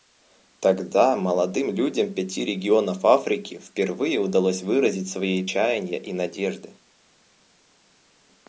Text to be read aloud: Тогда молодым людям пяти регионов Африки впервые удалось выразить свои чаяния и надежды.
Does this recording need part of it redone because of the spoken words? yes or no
no